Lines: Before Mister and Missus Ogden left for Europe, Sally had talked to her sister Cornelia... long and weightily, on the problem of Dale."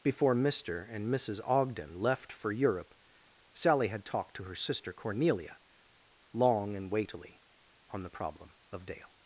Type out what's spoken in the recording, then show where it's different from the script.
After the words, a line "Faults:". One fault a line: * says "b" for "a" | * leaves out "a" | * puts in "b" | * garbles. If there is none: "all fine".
Before Mister and Missus Ogden left for Europe, Sally had talked to her sister Cornelia... long and weightily, on the problem of Dale."
Faults:
all fine